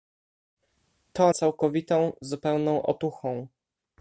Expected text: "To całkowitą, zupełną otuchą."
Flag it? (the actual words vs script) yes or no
no